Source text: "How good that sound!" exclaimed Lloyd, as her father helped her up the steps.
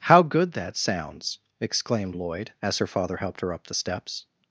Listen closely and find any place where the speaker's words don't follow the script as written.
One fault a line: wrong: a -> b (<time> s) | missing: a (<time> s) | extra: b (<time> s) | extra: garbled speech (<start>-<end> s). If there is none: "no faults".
wrong: sound -> sounds (0.8 s)